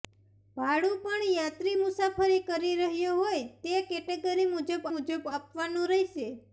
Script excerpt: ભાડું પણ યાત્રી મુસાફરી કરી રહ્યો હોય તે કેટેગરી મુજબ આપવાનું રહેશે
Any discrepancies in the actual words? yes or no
yes